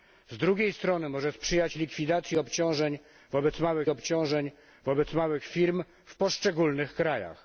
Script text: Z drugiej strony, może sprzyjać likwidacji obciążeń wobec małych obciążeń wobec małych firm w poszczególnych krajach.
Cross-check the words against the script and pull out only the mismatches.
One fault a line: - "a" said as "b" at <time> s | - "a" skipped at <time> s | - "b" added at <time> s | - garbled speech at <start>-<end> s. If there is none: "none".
none